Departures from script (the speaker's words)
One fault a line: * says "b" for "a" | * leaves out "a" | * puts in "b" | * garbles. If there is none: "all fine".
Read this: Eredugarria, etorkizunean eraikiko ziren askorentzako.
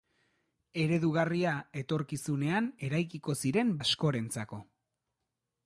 all fine